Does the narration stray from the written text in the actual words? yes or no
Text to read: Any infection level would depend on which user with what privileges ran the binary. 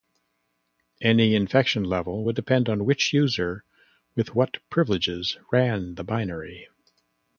no